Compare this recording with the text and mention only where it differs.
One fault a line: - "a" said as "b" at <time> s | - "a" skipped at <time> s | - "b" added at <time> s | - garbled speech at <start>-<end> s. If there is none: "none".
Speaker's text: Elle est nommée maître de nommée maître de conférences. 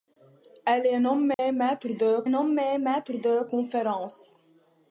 none